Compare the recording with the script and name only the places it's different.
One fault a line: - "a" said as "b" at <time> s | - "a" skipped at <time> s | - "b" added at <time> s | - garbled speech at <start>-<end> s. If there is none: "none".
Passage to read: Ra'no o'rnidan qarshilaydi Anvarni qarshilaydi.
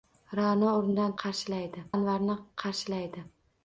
none